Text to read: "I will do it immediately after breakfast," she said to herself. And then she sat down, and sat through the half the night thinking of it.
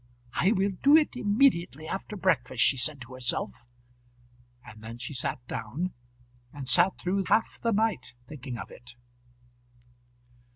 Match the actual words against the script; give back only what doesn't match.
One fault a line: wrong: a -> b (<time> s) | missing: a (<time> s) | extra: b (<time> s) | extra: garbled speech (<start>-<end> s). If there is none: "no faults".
missing: the (7.2 s)